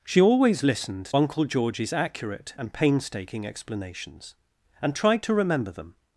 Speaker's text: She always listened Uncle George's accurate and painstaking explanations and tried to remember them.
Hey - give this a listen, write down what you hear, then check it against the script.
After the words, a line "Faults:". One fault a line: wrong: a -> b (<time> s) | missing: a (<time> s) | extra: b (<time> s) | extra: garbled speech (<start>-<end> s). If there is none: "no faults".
She always listened Uncle George's accurate and painstaking explanations and tried to remember them.
Faults:
no faults